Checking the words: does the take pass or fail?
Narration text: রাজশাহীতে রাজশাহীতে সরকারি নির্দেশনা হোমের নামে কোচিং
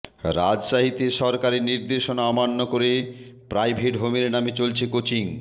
fail